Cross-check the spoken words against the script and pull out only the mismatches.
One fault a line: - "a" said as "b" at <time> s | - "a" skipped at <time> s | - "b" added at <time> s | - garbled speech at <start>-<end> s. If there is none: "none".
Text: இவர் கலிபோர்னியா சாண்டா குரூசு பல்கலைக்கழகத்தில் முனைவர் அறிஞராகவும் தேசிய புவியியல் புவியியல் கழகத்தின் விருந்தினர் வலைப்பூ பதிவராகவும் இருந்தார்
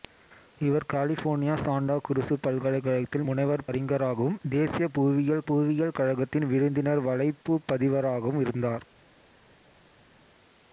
none